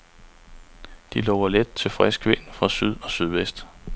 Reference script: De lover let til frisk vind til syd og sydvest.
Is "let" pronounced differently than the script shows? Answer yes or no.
no